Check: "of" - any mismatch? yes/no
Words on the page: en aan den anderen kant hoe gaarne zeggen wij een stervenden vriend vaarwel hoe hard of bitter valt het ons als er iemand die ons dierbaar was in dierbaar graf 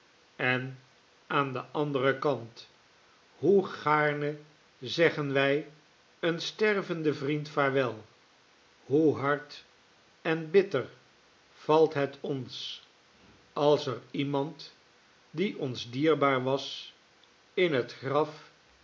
yes